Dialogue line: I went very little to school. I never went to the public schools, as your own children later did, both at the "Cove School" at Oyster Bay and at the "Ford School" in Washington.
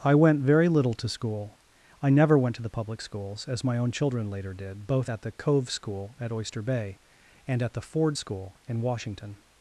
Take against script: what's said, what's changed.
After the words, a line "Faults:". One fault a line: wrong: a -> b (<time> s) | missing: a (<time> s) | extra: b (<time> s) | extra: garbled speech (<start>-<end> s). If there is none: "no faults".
I went very little to school. I never went to the public schools, as my own children later did, both at the "Cove School" at Oyster Bay and at the "Ford School" in Washington.
Faults:
wrong: your -> my (3.6 s)